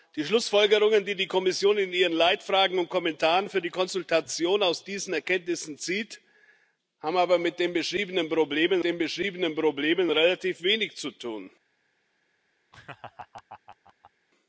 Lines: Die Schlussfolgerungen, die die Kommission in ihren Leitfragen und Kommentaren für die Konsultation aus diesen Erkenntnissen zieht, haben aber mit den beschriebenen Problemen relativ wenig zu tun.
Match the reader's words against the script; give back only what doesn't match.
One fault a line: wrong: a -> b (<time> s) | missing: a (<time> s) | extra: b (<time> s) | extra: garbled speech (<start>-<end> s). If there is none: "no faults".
extra: den beschriebenen Problemen (8.8 s)